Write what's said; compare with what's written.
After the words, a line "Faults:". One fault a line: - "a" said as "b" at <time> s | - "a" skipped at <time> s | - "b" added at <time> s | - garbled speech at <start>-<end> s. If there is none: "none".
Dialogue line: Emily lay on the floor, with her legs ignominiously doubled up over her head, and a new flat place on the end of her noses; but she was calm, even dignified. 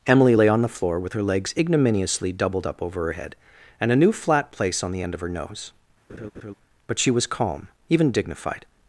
Emily lay on the floor, with her legs ignominiously doubled up over her head, and a new flat place on the end of her nose; but she was calm, even dignified.
Faults:
- "noses" said as "nose" at 5.3 s